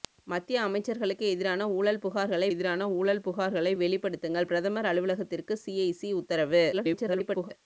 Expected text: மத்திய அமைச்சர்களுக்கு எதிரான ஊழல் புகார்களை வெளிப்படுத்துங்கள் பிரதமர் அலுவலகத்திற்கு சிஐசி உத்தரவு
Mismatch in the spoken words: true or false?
true